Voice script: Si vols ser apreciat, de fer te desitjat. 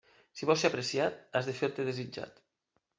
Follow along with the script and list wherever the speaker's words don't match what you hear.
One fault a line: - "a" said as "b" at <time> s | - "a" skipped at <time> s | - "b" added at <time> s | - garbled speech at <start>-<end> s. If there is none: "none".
- "has" added at 1.4 s